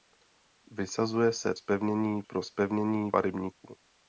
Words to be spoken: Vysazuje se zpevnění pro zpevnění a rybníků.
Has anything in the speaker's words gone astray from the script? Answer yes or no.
no